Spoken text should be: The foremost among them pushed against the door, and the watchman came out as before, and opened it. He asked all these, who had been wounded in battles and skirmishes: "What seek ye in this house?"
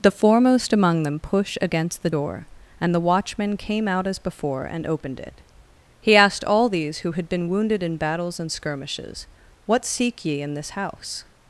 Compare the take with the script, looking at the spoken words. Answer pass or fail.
fail